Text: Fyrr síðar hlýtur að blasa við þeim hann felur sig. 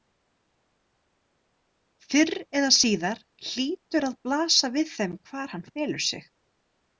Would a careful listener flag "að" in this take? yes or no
no